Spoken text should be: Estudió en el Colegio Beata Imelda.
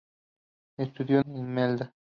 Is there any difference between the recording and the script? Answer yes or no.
yes